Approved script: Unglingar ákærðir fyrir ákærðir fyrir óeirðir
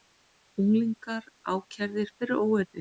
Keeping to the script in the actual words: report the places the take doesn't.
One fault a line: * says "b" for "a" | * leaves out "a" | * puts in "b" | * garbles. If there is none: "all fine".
* leaves out "ákærðir fyrir"